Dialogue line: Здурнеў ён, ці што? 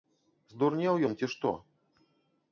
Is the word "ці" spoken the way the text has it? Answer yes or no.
yes